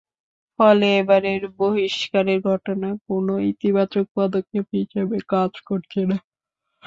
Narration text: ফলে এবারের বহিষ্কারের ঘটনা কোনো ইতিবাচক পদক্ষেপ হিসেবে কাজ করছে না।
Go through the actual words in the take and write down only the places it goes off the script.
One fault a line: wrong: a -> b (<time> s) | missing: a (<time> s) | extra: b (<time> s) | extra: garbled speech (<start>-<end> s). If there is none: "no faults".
no faults